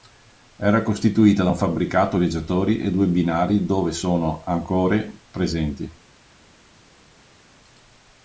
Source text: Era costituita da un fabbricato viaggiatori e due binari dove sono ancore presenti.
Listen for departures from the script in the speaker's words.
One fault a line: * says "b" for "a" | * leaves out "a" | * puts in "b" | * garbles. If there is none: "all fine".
all fine